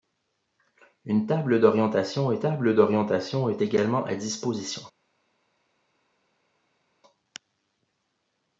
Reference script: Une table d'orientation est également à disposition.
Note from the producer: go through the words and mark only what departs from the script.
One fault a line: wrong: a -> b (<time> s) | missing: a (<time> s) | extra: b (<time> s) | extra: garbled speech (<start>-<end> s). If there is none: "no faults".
extra: table d'orientation est (2.4 s)